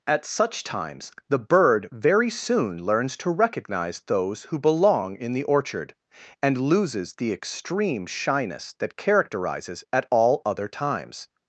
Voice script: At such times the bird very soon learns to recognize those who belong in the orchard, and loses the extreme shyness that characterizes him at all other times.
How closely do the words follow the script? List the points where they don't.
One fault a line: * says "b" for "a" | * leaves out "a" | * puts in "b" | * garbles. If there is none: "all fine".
* leaves out "him"